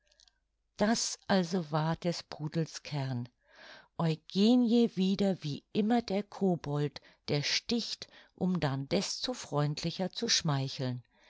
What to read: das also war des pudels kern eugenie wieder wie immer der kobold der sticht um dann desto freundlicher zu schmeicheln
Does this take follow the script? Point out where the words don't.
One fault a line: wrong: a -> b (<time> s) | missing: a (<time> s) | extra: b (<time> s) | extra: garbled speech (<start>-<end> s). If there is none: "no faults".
no faults